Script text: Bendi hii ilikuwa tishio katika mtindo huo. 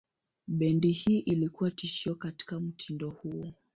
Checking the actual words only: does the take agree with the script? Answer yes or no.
yes